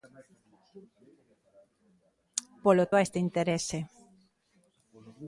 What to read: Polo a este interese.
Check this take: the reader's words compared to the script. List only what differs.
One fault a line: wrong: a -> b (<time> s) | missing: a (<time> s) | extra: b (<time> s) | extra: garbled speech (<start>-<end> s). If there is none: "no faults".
no faults